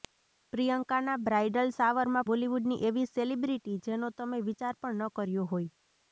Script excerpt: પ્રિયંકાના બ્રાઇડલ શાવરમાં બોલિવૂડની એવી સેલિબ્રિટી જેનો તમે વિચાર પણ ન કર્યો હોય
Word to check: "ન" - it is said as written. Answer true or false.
true